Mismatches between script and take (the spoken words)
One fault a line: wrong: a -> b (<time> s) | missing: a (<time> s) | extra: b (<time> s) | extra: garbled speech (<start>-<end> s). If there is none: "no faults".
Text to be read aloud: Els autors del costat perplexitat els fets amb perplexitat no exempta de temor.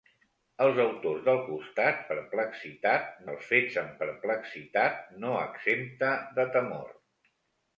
no faults